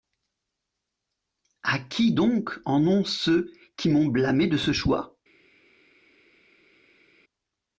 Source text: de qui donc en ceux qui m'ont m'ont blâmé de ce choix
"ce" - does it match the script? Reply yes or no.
yes